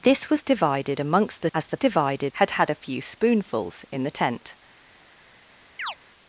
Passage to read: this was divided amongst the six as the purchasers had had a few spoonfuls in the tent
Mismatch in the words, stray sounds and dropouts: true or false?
true